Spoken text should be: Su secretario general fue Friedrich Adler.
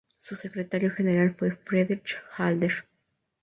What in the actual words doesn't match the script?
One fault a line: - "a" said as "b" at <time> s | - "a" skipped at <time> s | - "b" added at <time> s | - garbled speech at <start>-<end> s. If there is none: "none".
none